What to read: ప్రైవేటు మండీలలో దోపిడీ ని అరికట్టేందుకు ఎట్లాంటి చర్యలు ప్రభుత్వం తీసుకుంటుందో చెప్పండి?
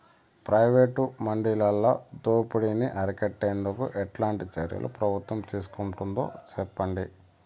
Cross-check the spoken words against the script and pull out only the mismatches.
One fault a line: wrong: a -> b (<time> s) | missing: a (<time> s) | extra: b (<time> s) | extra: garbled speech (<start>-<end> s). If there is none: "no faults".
no faults